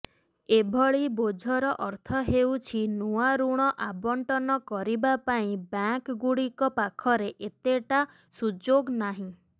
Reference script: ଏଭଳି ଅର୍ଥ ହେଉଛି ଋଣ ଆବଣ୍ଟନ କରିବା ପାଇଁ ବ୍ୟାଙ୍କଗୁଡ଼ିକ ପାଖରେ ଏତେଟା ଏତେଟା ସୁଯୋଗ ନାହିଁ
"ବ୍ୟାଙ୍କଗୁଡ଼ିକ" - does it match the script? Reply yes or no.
yes